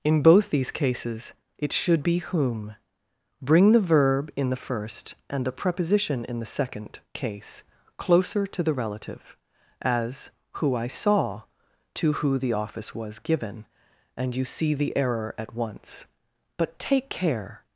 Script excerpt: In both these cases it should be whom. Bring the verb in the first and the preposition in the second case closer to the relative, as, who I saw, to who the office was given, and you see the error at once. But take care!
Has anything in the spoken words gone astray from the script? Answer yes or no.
no